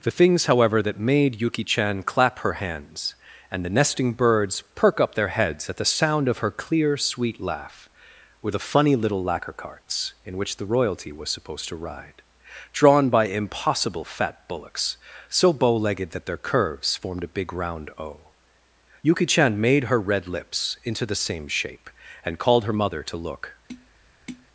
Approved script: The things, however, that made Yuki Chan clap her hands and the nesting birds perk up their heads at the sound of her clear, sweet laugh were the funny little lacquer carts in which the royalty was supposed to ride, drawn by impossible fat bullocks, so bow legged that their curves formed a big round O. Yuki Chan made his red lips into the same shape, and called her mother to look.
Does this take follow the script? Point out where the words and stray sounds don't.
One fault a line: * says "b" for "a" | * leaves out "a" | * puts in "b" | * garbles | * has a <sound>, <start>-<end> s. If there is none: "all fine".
* says "her" for "his"
* has a tap, 23.7-24.5 s